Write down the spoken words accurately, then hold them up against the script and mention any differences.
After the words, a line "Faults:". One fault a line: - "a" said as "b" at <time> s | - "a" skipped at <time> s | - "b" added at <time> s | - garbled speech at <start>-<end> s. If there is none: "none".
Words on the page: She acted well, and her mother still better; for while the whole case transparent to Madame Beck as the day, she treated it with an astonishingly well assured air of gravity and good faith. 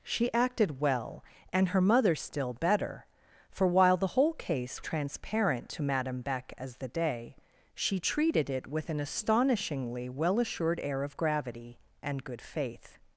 She acted well, and her mother still better; for while the whole case transparent to Madame Beck as the day, she treated it with an astonishingly well assured air of gravity and good faith.
Faults:
none